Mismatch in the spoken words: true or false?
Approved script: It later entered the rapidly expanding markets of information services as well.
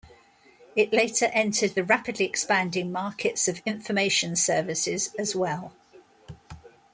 false